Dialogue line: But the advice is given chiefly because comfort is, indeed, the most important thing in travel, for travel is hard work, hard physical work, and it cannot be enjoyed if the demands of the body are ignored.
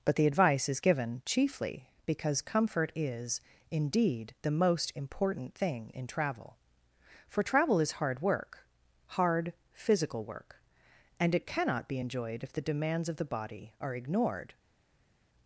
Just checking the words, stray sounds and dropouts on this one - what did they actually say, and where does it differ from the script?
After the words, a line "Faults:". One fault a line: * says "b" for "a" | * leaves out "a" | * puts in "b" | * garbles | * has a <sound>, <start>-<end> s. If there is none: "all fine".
But the advice is given chiefly because comfort is, indeed, the most important thing in travel, for travel is hard work, hard physical work, and it cannot be enjoyed if the demands of the body are ignored.
Faults:
all fine